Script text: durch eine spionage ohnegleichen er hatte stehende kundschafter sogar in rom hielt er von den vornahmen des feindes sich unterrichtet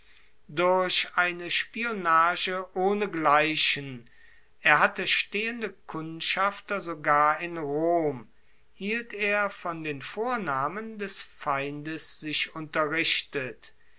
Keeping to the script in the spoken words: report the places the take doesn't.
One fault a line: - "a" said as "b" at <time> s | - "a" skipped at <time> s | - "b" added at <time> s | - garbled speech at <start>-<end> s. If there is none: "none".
none